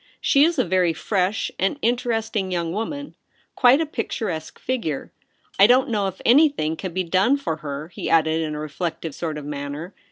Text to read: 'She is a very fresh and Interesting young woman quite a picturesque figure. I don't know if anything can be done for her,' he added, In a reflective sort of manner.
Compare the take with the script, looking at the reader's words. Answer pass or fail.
pass